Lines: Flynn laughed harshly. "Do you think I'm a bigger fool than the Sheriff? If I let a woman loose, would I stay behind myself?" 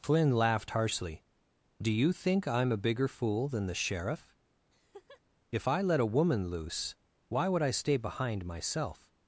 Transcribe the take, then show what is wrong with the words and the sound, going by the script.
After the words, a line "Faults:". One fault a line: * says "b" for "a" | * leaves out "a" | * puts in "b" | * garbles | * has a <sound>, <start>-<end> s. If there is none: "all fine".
Flynn laughed harshly. "Do you think I'm a bigger fool than the Sheriff? If I let a woman loose, why would I stay behind myself?"
Faults:
* has a laugh, 4.7-5.2 s
* puts in "why"